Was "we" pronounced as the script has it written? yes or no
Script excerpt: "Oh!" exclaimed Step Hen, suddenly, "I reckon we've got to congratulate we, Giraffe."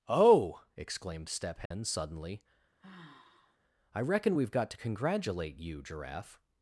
no